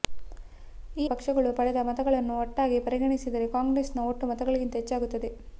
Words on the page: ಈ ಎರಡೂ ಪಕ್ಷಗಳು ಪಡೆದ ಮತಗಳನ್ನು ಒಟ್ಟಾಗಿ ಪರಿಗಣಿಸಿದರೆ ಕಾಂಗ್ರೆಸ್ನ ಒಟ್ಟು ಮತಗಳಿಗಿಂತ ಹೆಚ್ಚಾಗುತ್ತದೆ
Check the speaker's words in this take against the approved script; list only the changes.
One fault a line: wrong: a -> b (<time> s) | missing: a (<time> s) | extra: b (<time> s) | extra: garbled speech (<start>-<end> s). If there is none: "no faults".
missing: ಎರಡೂ (1.1 s)